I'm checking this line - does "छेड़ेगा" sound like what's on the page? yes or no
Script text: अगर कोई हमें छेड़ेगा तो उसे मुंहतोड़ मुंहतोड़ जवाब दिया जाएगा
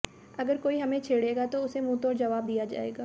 yes